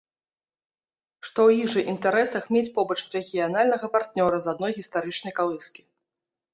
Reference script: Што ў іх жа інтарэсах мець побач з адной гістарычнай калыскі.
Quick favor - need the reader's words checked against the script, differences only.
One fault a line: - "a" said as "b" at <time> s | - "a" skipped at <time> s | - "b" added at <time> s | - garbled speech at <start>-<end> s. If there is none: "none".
- "рэгіянальнага партнёра" added at 3.2 s